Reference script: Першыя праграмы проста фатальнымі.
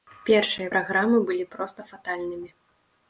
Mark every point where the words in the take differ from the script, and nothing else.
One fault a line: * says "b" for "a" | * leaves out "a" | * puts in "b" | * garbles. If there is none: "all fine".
* puts in "былі"